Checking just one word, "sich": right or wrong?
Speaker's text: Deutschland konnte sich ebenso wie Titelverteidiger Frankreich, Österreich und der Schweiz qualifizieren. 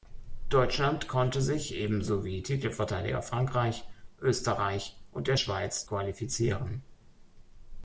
right